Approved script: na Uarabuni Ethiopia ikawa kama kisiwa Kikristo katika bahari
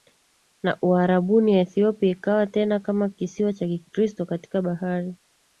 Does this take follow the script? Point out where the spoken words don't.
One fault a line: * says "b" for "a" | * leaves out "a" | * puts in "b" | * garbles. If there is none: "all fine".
* puts in "tena"
* puts in "cha"